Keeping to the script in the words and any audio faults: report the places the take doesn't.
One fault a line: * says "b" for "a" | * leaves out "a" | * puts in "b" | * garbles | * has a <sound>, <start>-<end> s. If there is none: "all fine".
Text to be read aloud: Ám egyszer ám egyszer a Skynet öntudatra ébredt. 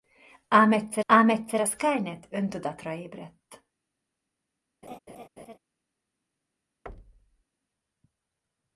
* has a laugh, 4.8-5.6 s
* has a thud, 6.9-7.4 s